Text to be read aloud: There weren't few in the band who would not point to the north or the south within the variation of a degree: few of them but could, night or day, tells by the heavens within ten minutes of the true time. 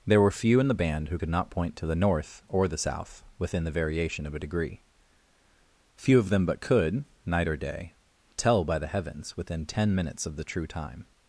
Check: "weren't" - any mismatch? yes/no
yes